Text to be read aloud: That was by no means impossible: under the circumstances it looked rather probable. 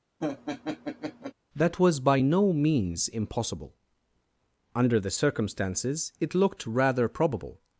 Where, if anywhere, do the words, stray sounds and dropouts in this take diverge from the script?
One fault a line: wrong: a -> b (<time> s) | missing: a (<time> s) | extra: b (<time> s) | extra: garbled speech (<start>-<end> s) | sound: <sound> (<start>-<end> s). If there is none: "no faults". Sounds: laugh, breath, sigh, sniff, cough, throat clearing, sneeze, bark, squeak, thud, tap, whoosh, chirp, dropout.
sound: laugh (0.2-1.3 s)